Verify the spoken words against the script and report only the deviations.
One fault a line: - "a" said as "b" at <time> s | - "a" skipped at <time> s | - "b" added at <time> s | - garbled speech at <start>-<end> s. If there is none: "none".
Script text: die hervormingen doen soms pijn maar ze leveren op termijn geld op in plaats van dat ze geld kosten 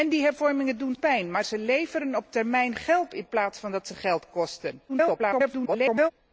- "soms" skipped at 0.9 s
- "op" skipped at 3.1 s
- garbled speech at 4.9-6.1 s